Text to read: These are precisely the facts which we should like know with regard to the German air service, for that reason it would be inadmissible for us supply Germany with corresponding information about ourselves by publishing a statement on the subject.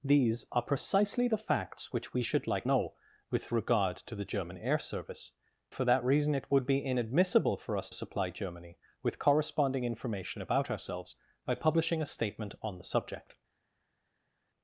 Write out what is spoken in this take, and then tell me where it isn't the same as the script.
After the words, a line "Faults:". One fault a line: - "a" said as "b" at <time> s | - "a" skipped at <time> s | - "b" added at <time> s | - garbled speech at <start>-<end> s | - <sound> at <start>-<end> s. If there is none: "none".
These are precisely the facts which we should like know with regard to the German air service, for that reason it would be inadmissible for us supply Germany with corresponding information about ourselves by publishing a statement on the subject.
Faults:
none